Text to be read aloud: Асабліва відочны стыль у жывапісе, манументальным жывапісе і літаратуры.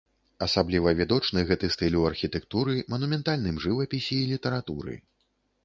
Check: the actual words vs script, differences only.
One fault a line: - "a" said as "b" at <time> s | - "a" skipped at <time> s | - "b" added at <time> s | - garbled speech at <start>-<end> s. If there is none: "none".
- "гэты" added at 1.5 s
- "жывапісе" said as "архітэктуры" at 2.1 s